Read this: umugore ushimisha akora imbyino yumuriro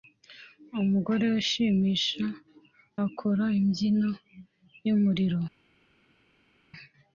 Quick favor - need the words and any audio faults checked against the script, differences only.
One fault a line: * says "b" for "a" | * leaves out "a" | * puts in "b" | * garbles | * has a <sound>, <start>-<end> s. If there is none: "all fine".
all fine